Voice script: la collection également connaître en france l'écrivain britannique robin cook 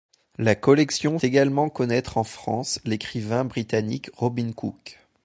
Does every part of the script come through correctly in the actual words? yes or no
yes